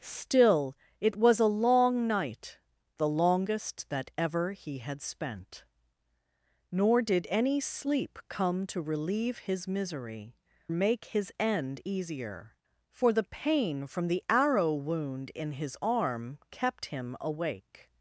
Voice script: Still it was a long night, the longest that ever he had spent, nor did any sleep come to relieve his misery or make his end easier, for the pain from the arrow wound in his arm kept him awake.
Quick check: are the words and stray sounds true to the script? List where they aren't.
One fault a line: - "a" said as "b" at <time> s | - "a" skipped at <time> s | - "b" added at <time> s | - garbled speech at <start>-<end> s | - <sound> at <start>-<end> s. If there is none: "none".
- "or" skipped at 10.3 s